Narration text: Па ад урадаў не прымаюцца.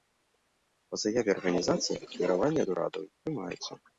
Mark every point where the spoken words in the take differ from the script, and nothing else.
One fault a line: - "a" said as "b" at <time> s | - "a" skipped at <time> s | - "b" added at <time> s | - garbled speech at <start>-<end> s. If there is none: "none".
- "заяве арганізацыі ахвяраванні" added at 1.0 s